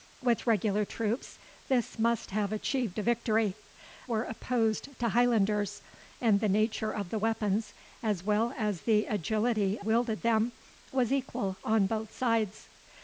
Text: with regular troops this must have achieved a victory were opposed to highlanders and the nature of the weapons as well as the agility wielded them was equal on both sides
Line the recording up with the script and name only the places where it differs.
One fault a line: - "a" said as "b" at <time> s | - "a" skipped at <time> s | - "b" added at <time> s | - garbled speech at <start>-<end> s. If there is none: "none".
none